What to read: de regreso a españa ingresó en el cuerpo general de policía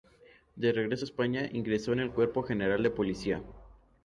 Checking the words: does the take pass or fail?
pass